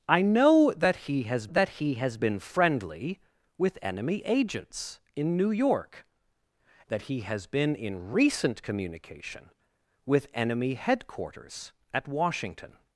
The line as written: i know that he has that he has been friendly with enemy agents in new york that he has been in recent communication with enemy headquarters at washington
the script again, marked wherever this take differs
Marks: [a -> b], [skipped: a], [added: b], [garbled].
i know that he has that he has been friendly with enemy agents in new york that he has been in recent communication with enemy headquarters at washington